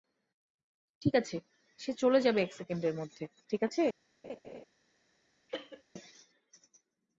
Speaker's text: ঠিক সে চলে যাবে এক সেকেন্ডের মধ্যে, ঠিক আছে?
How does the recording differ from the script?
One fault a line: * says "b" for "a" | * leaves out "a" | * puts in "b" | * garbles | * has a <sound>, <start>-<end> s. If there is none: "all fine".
* puts in "আছে"
* has a laugh, 4.2-4.6 s
* has a cough, 5.5-5.8 s